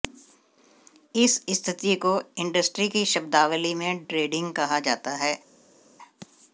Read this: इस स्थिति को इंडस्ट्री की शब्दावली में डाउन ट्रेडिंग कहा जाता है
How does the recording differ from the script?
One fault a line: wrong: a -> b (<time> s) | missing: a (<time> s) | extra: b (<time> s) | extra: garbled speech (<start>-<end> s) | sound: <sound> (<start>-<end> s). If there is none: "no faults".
missing: डाउन (4.0 s)